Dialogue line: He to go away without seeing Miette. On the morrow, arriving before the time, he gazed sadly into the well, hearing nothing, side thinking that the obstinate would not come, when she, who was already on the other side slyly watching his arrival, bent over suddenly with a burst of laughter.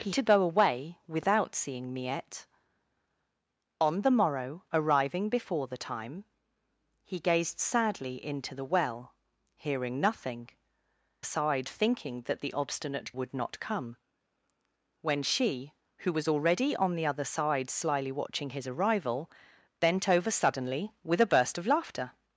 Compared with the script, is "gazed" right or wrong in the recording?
right